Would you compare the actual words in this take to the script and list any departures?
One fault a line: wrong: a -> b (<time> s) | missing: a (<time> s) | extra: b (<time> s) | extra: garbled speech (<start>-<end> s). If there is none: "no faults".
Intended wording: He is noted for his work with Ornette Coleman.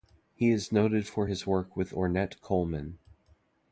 no faults